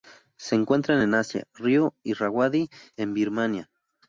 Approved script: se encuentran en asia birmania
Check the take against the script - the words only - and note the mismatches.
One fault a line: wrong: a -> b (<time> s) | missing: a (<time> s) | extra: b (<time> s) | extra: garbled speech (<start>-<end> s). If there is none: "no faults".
extra: río irrawaddy en (1.5 s)